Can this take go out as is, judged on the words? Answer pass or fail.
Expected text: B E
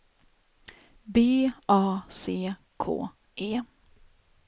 fail